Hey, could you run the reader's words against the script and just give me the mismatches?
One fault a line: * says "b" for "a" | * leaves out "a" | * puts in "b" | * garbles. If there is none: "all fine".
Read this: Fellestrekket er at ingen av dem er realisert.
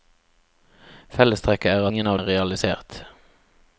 * leaves out "at"
* leaves out "dem"